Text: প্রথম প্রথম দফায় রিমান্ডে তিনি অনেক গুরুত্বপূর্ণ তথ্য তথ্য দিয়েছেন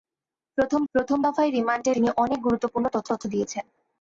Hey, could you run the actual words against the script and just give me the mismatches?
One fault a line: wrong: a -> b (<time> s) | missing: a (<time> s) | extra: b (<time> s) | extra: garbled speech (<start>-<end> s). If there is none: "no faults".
no faults